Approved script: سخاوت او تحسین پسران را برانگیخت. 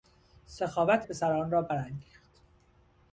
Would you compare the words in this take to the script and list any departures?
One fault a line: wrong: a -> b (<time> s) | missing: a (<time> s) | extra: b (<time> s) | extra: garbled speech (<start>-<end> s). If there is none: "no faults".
missing: او تحسین (1.1 s)